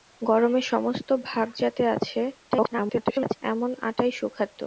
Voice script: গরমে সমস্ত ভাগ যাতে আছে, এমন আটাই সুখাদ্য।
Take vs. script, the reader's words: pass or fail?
fail